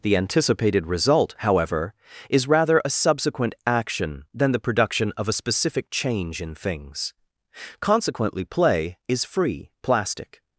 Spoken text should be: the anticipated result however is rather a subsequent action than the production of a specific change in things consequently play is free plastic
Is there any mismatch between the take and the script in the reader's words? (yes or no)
no